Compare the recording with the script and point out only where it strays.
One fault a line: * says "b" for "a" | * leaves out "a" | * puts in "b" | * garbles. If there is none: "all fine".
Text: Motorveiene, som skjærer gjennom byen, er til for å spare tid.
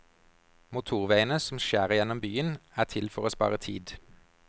all fine